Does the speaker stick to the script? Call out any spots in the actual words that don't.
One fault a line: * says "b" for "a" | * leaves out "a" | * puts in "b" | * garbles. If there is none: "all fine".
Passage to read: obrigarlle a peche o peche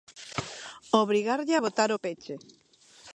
* says "botar" for "peche"